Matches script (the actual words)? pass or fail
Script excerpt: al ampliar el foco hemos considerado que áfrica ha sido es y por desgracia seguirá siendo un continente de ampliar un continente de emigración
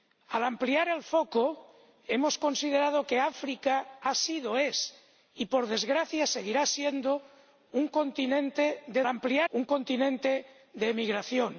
pass